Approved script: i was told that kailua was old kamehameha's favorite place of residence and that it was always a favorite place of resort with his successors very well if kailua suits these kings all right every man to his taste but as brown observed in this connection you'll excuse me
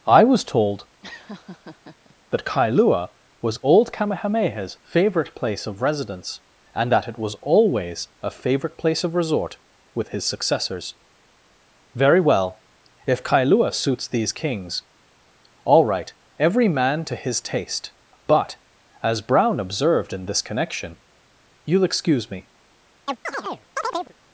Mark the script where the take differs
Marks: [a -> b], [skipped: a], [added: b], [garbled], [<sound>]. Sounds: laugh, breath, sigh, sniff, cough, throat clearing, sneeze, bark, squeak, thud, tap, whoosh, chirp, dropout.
i was told [laugh] that kailua was old kamehameha's favorite place of residence and that it was always a favorite place of resort with his successors very well if kailua suits these kings all right every man to his taste but as brown observed in this connection you'll excuse me [chirp]